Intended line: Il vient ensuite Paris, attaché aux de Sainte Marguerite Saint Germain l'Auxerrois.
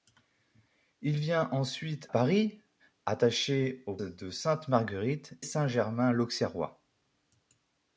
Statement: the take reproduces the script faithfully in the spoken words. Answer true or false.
true